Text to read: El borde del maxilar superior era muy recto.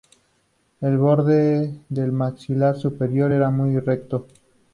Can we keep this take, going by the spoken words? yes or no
yes